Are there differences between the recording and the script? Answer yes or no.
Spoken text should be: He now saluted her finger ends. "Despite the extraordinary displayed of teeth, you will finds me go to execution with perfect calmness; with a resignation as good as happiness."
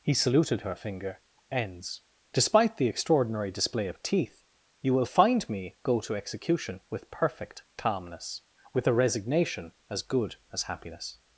yes